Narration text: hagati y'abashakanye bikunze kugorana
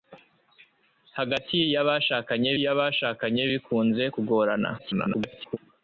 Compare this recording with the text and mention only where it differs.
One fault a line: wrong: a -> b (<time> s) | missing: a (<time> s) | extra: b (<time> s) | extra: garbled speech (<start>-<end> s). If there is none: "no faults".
extra: y'abashakanye (2.6 s)
extra: garbled speech (4.8-5.6 s)